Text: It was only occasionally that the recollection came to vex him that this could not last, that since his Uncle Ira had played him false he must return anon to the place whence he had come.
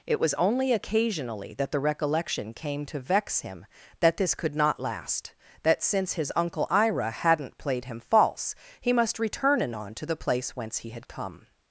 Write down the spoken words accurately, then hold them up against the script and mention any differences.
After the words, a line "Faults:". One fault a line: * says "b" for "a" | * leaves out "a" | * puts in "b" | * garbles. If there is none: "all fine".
It was only occasionally that the recollection came to vex him that this could not last, that since his Uncle Ira hadn't played him false he must return anon to the place whence he had come.
Faults:
* says "hadn't" for "had"